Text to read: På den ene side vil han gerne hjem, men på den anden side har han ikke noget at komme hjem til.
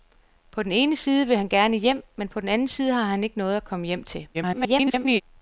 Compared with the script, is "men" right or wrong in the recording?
right